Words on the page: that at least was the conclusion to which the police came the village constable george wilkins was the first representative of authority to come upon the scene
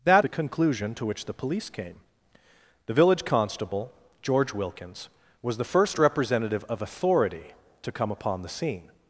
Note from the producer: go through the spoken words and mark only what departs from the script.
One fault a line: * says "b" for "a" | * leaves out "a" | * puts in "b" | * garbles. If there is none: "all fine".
* leaves out "at least was"